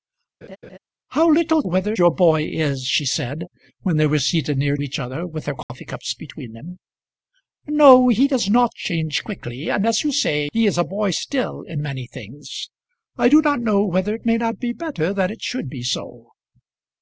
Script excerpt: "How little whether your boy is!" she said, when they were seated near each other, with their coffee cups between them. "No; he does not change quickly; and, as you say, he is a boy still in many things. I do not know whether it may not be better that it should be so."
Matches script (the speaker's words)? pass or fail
pass